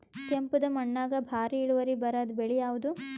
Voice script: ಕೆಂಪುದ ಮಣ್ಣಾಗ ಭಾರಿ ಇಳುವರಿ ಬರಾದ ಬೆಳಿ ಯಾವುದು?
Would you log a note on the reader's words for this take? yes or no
no